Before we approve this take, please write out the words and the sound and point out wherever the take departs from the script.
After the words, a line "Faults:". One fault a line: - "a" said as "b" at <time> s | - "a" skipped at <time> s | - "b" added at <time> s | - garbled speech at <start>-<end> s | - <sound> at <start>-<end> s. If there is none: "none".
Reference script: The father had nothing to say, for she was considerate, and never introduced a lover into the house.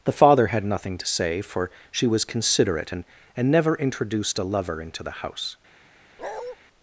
The father had nothing to say, for she was considerate, and and never introduced a lover into the house.
Faults:
- "and" added at 3.3 s
- bark at 6.2-6.6 s